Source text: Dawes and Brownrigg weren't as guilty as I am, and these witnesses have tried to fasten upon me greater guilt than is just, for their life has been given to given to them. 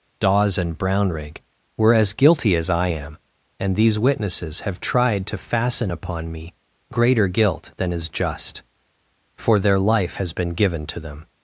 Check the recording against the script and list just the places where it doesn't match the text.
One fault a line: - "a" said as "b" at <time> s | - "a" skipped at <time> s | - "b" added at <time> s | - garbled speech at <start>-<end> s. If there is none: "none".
- "weren't" said as "were" at 1.8 s
- "given to" skipped at 11.0 s